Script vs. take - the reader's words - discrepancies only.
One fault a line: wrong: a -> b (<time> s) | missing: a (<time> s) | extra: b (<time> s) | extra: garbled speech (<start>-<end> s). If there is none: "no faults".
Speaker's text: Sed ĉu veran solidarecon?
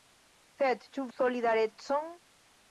missing: veran (1.1 s)